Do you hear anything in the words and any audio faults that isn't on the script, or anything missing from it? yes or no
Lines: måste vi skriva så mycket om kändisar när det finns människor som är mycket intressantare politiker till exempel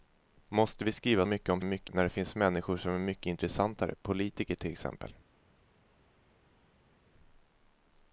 yes